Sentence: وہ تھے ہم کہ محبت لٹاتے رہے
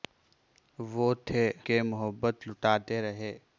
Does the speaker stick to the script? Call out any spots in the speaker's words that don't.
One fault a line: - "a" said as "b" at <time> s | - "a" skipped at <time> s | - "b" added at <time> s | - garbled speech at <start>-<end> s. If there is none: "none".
- "ہم" skipped at 1.4 s